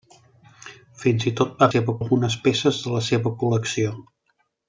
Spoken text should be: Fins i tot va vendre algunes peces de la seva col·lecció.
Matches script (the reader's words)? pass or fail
fail